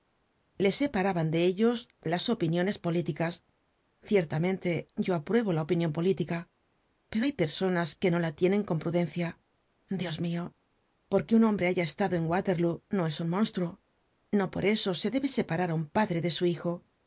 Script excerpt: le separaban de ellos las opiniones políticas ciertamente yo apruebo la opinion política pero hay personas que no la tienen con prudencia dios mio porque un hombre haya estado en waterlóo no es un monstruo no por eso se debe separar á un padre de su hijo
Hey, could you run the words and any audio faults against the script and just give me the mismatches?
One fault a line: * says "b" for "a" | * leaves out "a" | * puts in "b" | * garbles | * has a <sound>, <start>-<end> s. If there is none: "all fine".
all fine